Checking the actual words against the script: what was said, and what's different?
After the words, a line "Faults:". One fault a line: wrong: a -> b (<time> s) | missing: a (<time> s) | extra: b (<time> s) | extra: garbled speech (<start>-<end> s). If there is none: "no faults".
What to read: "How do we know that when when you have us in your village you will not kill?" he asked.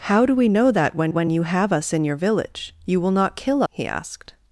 "How do we know that when when you have us in your village you will not kill?" he asked.
Faults:
no faults